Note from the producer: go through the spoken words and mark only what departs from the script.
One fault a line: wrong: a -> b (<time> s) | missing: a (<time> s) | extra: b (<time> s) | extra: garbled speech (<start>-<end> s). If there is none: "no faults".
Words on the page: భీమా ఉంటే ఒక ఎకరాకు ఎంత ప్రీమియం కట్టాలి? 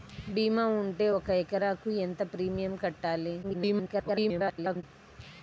extra: garbled speech (3.4-4.8 s)